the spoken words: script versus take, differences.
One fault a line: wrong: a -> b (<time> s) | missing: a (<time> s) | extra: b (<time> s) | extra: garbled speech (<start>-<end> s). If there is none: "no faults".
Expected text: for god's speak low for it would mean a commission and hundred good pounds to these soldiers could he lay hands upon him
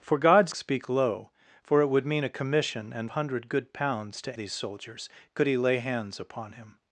no faults